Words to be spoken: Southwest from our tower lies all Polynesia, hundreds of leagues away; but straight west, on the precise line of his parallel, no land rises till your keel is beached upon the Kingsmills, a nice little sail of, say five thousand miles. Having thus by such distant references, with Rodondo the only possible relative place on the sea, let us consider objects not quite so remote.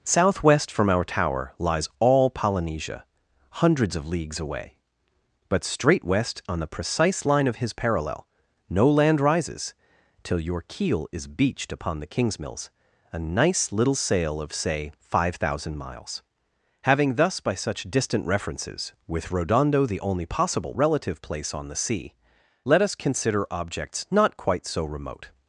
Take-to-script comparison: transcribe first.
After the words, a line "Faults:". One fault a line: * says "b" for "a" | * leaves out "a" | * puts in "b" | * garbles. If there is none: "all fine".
Southwest from our tower lies all Polynesia, hundreds of leagues away; but straight west, on the precise line of his parallel, no land rises till your keel is beached upon the Kingsmills, a nice little sail of, say five thousand miles. Having thus by such distant references, with Rodondo the only possible relative place on the sea, let us consider objects not quite so remote.
Faults:
all fine